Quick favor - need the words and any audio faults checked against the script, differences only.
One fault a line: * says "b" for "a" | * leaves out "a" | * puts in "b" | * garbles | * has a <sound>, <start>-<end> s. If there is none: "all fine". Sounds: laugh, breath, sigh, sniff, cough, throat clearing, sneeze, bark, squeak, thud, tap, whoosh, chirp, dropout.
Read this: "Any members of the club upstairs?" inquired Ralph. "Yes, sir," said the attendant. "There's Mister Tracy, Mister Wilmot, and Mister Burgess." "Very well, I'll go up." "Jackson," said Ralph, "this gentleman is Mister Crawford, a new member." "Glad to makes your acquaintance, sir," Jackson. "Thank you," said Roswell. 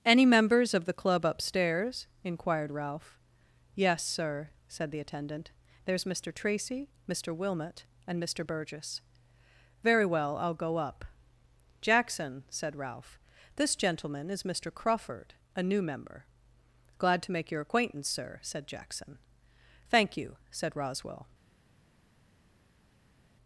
* says "make" for "makes"
* puts in "said"